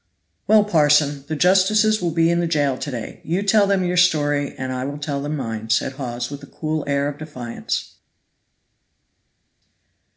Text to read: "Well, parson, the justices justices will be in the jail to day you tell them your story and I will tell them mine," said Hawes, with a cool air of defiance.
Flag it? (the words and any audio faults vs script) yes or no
yes